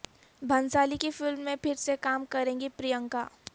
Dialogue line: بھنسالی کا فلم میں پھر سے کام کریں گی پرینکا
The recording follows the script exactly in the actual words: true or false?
false